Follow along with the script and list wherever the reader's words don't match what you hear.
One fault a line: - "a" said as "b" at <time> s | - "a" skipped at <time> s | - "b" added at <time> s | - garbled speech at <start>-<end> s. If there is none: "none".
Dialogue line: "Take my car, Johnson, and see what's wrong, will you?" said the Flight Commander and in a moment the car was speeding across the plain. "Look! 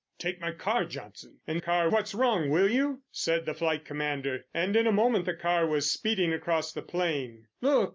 - "see" said as "car" at 1.6 s